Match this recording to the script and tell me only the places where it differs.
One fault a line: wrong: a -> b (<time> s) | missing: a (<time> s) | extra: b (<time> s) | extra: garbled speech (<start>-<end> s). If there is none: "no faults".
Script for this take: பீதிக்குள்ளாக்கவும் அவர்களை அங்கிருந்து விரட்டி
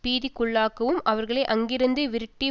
no faults